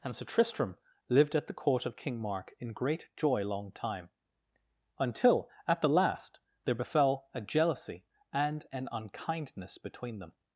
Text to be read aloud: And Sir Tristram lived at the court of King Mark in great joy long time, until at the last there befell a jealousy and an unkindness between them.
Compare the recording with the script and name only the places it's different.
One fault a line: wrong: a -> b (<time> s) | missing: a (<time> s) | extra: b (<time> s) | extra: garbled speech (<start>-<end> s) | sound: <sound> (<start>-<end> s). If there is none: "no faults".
no faults